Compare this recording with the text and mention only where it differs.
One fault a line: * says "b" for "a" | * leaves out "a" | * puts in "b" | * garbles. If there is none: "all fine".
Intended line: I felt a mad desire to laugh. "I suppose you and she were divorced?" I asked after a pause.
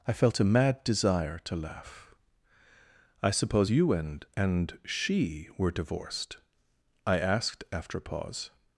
* puts in "and"